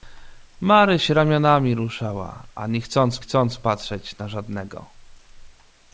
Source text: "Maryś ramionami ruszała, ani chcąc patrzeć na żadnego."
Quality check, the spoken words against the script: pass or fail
fail